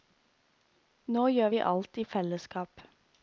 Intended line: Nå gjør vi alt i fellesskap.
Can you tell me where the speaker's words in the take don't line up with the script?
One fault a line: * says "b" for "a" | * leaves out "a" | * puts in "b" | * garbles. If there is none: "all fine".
all fine